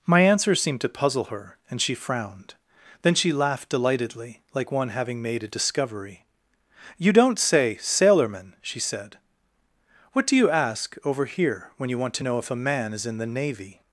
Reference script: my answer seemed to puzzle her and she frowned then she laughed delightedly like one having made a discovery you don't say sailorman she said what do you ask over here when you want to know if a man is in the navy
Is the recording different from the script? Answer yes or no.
no